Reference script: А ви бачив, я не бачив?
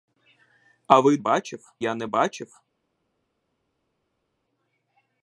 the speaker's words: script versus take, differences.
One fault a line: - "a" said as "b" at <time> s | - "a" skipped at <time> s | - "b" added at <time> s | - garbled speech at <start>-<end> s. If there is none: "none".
none